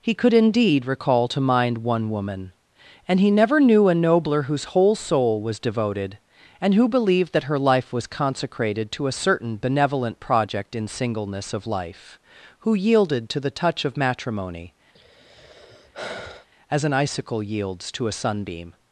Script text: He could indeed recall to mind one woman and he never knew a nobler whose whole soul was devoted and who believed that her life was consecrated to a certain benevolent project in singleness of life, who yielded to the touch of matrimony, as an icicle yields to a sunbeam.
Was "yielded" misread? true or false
false